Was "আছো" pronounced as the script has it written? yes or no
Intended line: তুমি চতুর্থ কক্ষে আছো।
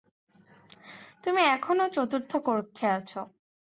yes